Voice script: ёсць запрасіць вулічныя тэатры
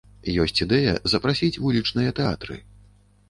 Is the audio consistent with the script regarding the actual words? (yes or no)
no